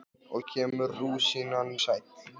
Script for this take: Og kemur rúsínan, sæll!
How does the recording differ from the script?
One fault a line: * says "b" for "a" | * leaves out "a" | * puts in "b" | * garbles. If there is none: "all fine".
all fine